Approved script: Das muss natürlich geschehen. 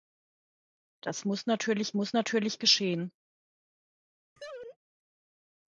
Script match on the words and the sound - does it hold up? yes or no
no